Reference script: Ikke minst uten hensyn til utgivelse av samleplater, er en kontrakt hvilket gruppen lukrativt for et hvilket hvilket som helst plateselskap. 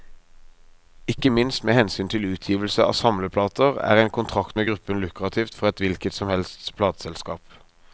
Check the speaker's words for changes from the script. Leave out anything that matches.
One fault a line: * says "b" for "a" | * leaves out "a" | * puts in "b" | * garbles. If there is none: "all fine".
* says "med" for "uten"
* says "med" for "hvilket"
* leaves out "hvilket"